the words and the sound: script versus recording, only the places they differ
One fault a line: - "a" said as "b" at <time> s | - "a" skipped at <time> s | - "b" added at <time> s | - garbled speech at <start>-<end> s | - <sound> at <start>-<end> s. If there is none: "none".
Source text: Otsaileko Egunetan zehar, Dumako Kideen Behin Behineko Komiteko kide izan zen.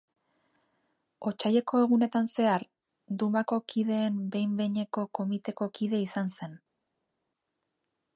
none